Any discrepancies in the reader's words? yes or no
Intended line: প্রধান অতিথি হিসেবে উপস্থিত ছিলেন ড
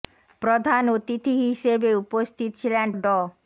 no